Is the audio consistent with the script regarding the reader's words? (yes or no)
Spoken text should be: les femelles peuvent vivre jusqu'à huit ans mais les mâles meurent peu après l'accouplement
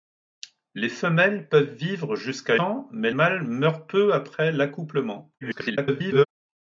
no